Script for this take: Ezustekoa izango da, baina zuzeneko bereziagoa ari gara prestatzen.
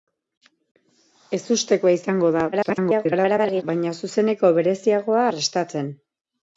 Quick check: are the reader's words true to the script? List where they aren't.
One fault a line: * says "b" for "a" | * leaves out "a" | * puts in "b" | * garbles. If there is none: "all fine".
* garbles
* leaves out "ari gara"